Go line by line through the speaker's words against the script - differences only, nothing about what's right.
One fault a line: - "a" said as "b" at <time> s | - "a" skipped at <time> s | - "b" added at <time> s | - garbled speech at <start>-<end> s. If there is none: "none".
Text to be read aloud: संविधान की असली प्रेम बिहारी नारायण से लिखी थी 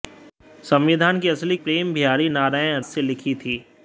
none